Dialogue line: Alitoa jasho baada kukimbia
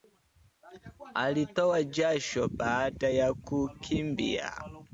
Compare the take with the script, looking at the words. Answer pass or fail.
fail